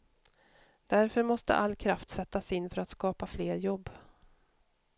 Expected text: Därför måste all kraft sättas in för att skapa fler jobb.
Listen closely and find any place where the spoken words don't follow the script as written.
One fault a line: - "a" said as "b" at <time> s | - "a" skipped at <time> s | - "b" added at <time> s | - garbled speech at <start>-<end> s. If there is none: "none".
none